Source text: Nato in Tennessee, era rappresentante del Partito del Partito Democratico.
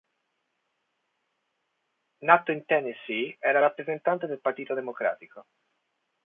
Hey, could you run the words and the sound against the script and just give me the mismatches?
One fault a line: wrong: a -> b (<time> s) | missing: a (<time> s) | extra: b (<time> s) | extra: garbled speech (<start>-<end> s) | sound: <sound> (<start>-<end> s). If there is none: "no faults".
missing: del Partito (4.7 s)